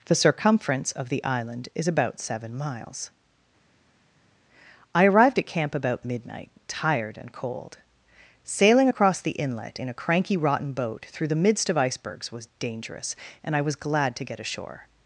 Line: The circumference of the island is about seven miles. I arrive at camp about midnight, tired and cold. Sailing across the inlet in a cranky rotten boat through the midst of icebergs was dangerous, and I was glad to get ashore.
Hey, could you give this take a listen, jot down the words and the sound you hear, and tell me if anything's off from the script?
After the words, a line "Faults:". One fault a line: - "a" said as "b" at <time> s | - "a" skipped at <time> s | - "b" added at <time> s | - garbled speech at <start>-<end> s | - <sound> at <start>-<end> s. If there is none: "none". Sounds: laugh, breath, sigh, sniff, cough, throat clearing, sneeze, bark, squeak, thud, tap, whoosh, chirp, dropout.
The circumference of the island is about seven miles. I arrived at camp about midnight, tired and cold. Sailing across the inlet in a cranky rotten boat through the midst of icebergs was dangerous, and I was glad to get ashore.
Faults:
- "arrive" said as "arrived" at 5.0 s